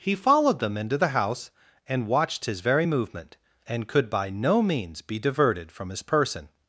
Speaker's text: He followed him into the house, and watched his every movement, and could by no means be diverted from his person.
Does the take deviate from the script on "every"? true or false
true